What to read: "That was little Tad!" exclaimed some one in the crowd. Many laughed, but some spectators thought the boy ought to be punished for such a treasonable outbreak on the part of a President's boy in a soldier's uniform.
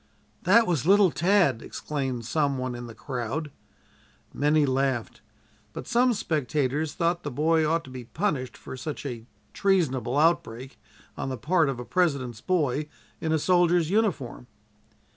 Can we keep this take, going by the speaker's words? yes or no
yes